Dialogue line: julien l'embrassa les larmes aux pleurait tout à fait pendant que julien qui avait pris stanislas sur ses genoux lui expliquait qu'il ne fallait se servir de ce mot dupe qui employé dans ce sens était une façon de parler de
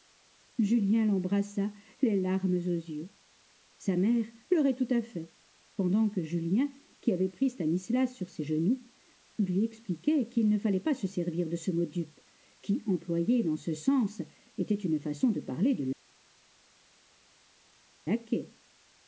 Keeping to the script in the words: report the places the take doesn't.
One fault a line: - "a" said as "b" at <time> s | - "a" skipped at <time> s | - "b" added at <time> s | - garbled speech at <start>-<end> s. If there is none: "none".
- "yeux sa mère" added at 2.6 s
- "pas" added at 10.8 s